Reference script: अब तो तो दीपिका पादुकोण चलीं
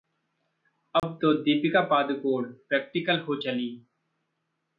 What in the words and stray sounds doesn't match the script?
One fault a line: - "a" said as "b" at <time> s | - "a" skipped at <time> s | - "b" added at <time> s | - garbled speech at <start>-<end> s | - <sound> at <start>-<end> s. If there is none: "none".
- dropout at 1.0-1.0 s
- "तो" skipped at 1.3 s
- "प्रैक्टिकल हो" added at 2.7 s